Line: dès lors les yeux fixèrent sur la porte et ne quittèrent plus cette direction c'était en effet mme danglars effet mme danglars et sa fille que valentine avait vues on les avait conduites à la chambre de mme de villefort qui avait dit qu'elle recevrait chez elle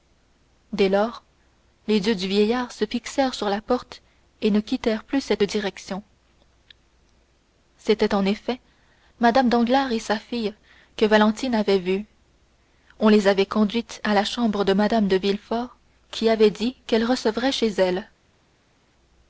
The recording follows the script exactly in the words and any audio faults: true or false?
false